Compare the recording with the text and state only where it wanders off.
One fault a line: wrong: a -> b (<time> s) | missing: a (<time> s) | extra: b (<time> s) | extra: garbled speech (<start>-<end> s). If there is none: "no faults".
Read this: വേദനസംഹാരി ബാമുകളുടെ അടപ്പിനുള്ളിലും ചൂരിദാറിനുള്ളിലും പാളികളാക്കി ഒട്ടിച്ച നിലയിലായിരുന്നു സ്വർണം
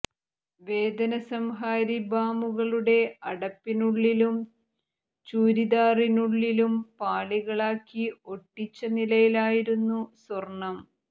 no faults